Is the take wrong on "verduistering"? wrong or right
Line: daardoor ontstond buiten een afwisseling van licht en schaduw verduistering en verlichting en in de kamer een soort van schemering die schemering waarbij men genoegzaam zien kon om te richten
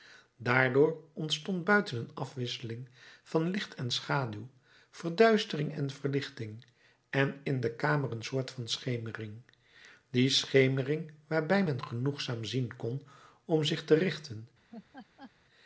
right